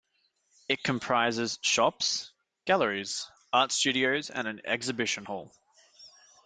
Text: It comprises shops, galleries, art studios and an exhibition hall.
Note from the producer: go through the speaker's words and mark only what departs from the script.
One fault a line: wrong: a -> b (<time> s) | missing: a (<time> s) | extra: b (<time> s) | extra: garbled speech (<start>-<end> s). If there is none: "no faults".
no faults